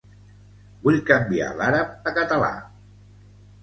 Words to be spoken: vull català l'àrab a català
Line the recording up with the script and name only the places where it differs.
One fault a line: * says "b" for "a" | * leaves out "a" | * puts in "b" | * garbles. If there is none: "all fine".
* says "canviar" for "català"